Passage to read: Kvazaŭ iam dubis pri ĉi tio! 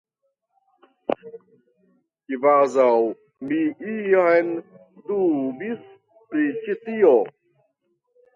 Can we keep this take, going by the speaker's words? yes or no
no